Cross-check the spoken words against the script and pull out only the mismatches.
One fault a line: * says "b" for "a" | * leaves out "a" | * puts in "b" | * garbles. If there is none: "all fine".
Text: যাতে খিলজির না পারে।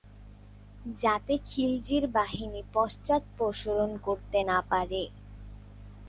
* puts in "বাহিনী পশ্চাদপসরণ করতে"